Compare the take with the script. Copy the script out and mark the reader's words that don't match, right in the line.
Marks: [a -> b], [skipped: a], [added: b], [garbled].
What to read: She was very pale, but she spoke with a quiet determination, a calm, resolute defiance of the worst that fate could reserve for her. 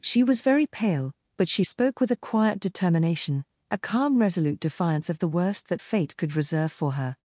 She was very pale, but she spoke with a quiet determination, a calm, resolute defiance of the worst that fate could reserve for her.